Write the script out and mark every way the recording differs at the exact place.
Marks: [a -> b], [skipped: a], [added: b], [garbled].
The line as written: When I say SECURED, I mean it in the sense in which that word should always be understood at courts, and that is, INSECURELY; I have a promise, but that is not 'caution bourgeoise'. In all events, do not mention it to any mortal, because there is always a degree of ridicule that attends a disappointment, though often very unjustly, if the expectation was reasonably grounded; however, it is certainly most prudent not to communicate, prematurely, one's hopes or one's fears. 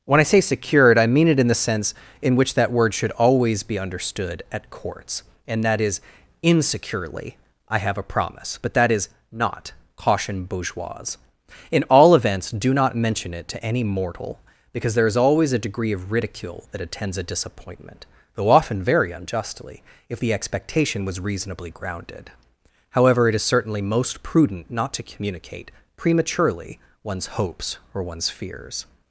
When I say SECURED, I mean it in the sense in which that word should always be understood at courts, and that is, INSECURELY; I have a promise, but that is not 'caution bourgeoise'. In all events, do not mention it to any mortal, because there is always a degree of ridicule that attends a disappointment, though often very unjustly, if the expectation was reasonably grounded; however, it is certainly most prudent not to communicate, prematurely, one's hopes or one's fears.